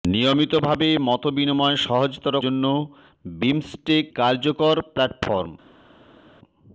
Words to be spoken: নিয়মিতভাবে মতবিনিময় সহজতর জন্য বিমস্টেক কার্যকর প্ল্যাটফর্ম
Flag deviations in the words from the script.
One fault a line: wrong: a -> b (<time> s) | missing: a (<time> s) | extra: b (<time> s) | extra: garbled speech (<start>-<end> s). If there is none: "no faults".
no faults